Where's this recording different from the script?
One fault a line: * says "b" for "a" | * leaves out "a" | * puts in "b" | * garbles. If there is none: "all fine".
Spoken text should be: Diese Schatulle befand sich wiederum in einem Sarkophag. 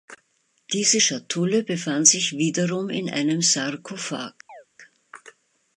all fine